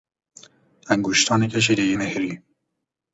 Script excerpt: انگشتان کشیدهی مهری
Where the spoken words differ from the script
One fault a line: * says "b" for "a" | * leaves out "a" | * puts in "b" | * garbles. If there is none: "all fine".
all fine